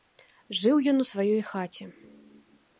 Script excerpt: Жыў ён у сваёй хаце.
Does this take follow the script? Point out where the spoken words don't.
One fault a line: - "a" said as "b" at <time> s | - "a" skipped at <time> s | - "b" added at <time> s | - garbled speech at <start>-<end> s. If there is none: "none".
none